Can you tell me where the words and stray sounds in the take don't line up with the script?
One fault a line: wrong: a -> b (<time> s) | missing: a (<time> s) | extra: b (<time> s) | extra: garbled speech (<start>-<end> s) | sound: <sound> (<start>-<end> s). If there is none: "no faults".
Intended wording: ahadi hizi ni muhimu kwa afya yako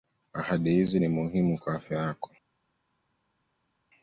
no faults